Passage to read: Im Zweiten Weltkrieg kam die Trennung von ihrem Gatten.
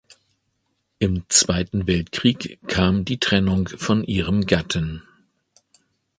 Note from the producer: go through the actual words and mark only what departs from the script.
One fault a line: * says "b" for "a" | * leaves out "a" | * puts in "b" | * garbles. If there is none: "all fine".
all fine